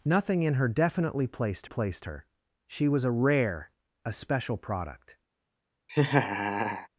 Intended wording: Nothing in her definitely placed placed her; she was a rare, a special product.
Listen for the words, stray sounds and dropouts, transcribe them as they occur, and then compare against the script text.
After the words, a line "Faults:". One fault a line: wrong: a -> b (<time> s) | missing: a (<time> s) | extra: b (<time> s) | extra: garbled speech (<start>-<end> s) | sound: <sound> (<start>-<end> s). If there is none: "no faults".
Nothing in her definitely placed placed her; she was a rare, a special product.
Faults:
sound: laugh (5.9-6.9 s)